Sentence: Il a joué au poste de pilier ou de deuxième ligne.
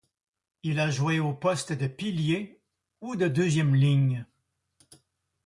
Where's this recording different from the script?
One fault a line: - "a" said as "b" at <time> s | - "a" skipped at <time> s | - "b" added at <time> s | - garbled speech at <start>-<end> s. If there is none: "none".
none